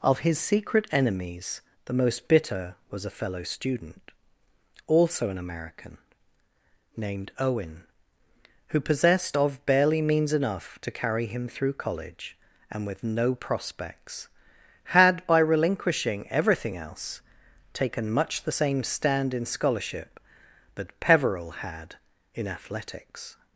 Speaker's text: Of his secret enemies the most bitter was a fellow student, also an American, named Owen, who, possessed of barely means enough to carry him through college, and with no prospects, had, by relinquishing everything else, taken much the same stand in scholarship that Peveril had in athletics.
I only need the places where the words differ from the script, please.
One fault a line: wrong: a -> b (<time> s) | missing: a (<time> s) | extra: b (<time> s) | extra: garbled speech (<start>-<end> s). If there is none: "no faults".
no faults